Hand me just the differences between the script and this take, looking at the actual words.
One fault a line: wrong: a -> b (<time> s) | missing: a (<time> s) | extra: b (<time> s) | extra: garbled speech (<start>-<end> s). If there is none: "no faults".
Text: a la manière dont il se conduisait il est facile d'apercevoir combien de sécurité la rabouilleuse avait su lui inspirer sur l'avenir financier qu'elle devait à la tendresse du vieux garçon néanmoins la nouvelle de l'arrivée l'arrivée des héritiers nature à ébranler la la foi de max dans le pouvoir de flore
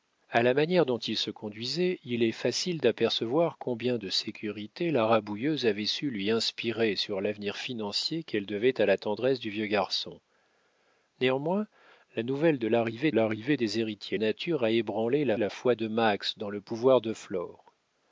no faults